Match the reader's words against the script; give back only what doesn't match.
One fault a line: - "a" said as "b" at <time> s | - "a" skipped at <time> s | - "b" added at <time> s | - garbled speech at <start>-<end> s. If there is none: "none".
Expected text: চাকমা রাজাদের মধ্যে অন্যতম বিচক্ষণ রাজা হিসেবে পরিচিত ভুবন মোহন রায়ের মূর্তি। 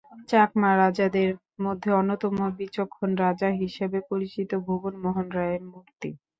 none